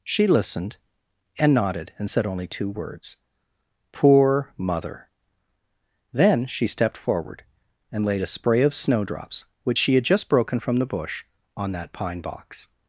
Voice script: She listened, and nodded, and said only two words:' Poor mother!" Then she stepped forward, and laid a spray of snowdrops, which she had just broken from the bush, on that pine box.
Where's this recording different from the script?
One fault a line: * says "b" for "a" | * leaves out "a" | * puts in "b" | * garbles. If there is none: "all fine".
all fine